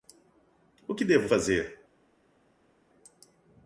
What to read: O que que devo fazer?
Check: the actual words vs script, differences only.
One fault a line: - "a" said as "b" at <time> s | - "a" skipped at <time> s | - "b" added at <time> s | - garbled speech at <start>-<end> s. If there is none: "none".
- "que" skipped at 1.1 s